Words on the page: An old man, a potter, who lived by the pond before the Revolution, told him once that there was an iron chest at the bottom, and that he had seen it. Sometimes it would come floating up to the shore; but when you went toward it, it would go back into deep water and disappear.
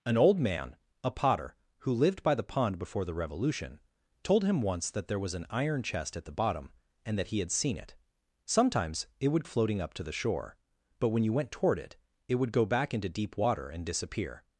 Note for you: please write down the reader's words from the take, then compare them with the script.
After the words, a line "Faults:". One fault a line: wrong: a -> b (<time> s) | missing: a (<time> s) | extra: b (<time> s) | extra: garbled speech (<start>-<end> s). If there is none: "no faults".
An old man, a potter, who lived by the pond before the Revolution, told him once that there was an iron chest at the bottom, and that he had seen it. Sometimes it would floating up to the shore; but when you went toward it, it would go back into deep water and disappear.
Faults:
missing: come (9.4 s)